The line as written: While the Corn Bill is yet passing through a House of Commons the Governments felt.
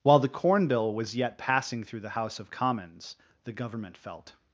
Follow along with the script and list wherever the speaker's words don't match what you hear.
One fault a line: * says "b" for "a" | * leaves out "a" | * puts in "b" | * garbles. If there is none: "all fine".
* says "was" for "is"
* says "the" for "a"
* says "Government" for "Governments"